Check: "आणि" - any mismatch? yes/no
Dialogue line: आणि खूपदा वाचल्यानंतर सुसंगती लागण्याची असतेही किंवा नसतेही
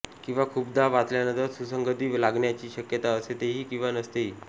yes